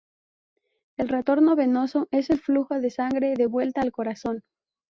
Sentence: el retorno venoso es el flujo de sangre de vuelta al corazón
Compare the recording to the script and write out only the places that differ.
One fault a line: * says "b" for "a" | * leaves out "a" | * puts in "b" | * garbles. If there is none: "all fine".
all fine